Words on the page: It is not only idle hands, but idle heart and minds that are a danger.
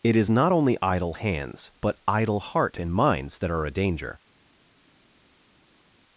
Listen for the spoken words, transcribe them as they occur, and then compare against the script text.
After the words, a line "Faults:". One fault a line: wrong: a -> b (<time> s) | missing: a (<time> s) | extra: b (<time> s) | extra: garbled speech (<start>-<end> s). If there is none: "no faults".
It is not only idle hands, but idle heart and minds that are a danger.
Faults:
no faults